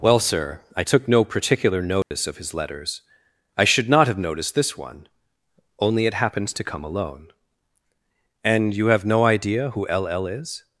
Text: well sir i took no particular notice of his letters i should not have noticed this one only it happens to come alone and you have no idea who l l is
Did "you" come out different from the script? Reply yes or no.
no